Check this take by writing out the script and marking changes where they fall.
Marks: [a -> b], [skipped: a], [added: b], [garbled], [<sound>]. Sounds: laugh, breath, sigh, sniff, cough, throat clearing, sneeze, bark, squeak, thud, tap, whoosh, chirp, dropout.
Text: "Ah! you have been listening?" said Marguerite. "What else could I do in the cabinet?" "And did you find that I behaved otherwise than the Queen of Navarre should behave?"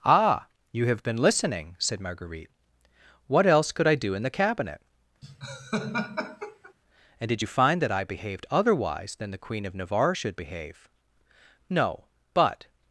"Ah! you have been listening?" said Marguerite. "What else could I do in the cabinet?" [laugh] "And did you find that I behaved otherwise than the Queen of Navarre should behave?" [added: No but]